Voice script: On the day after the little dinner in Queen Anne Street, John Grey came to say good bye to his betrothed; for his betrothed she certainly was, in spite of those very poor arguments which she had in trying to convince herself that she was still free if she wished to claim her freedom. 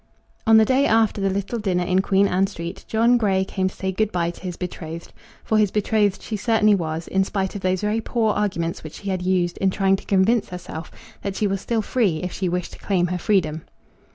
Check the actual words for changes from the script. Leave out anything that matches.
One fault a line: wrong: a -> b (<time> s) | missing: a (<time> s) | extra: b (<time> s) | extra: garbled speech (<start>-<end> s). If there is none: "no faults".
extra: used (9.2 s)